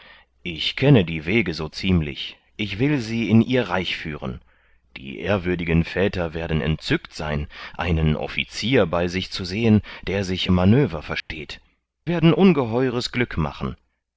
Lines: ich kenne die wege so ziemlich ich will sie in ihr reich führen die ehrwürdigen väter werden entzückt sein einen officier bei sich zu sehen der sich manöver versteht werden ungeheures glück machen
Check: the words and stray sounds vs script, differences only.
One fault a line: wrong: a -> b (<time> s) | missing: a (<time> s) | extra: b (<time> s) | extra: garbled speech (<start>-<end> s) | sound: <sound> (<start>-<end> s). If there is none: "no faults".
sound: dropout (11.2-11.3 s)